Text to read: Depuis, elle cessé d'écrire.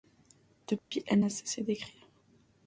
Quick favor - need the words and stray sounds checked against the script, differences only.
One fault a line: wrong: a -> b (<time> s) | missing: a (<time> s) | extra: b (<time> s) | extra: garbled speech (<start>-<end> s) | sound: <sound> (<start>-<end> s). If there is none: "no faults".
sound: dropout (0.8-0.9 s)
extra: n'a (1.2 s)